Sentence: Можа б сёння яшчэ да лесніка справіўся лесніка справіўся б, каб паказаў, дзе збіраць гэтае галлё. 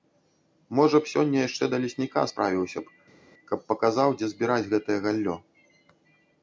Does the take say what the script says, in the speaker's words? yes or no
no